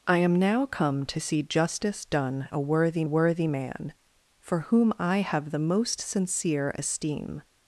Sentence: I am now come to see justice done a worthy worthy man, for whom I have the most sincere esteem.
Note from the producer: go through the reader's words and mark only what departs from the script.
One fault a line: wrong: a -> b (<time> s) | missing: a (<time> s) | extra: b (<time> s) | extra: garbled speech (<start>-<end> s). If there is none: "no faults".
no faults